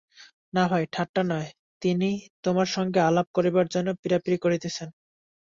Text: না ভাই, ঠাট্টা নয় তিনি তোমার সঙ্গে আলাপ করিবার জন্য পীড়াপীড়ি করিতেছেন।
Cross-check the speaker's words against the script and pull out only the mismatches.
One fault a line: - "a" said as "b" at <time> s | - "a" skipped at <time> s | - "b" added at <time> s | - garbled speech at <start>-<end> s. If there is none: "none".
none